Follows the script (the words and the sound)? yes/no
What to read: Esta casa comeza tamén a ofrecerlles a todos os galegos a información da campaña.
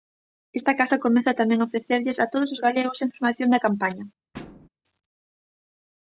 no